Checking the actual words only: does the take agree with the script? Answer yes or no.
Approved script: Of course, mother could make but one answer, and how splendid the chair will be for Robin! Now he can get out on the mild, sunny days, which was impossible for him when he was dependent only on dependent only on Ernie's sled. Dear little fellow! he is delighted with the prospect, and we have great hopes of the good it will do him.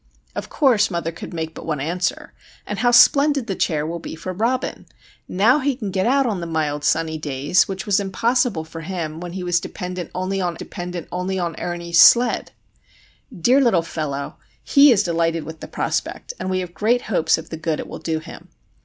yes